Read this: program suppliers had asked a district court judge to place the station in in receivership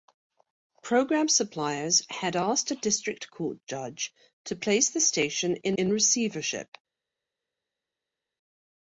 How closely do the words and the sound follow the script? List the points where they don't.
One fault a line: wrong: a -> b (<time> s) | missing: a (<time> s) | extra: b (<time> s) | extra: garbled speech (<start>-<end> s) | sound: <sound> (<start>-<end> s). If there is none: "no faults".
no faults